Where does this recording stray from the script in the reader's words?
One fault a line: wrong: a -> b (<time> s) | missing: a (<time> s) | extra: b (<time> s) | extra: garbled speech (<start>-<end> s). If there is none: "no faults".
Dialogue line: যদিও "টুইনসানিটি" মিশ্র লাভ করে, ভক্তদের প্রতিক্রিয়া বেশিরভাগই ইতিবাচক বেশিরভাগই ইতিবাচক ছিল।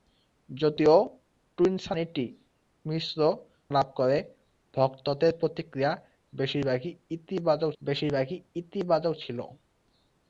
no faults